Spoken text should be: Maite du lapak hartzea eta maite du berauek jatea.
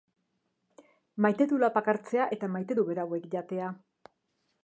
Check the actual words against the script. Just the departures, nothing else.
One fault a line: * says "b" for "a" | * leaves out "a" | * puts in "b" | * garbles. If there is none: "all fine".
all fine